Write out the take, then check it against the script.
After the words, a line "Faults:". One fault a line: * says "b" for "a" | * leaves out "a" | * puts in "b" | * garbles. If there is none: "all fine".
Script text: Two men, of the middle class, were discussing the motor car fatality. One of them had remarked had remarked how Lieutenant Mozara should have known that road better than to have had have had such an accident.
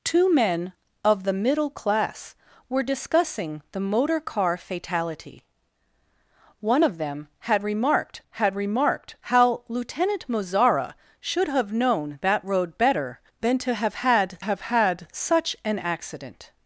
Two men, of the middle class, were discussing the motor car fatality. One of them had remarked had remarked how Lieutenant Mozara should have known that road better than to have had have had such an accident.
Faults:
all fine